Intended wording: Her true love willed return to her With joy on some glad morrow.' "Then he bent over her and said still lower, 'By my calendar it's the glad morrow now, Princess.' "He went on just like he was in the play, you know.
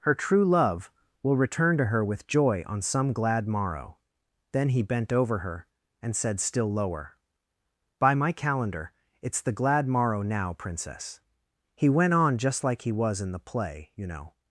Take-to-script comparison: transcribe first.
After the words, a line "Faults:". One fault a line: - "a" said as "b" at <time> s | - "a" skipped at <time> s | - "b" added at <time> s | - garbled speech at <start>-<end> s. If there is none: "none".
Her true love will return to her With joy on some glad morrow.' "Then he bent over her and said still lower, 'By my calendar it's the glad morrow now, Princess.' "He went on just like he was in the play, you know.
Faults:
- "willed" said as "will" at 1.2 s